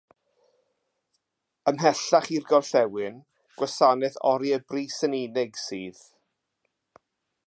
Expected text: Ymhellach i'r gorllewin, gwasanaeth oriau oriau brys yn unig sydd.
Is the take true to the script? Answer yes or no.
no